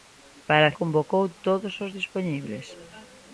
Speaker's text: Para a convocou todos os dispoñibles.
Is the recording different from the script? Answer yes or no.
no